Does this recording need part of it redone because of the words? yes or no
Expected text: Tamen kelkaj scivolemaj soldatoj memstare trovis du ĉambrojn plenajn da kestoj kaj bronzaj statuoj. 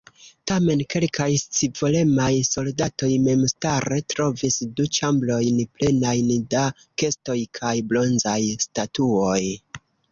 no